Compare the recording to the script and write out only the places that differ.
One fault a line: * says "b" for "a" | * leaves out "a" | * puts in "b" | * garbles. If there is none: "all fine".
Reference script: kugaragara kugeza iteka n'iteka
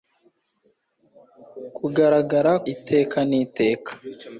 * leaves out "kugeza"